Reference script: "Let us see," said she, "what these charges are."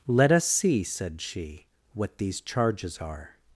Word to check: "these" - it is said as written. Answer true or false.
true